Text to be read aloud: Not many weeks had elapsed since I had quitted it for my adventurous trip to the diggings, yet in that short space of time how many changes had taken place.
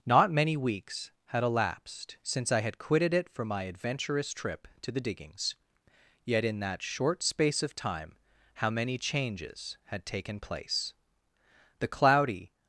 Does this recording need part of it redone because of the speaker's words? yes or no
yes